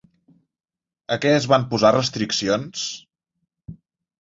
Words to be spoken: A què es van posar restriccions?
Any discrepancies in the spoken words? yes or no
no